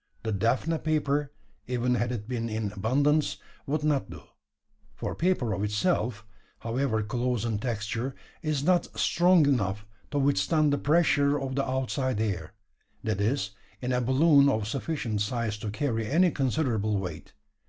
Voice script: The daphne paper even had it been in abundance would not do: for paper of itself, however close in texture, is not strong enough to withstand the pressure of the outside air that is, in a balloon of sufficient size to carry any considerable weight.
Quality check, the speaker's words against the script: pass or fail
pass